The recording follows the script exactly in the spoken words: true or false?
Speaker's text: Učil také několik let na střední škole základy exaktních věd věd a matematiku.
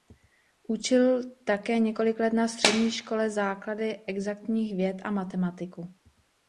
false